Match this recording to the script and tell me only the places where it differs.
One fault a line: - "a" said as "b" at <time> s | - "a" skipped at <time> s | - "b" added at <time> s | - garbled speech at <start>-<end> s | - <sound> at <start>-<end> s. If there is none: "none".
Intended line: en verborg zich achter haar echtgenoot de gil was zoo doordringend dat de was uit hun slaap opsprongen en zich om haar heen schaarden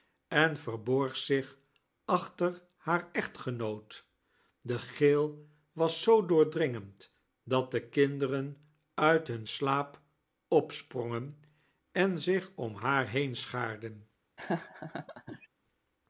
- "was" said as "kinderen" at 7.9 s
- laugh at 14.4-15.5 s